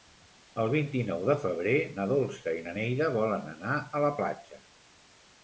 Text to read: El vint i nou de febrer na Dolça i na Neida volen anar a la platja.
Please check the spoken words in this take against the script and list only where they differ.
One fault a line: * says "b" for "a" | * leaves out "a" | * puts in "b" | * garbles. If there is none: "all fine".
all fine